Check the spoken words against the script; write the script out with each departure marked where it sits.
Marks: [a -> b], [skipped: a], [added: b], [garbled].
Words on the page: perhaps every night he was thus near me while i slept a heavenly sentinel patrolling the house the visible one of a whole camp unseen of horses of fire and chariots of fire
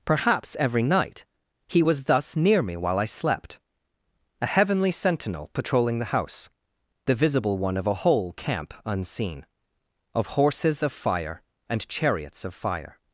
perhaps every night he was thus near me while i slept a heavenly sentinel patrolling the house the visible one of a whole camp unseen of horses of fire and chariots of fire